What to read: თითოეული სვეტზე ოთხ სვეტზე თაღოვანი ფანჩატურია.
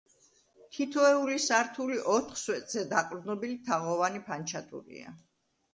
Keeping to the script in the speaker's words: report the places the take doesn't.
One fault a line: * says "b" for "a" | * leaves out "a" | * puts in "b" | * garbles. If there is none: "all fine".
* says "სართული" for "სვეტზე"
* puts in "დაყრდნობილი"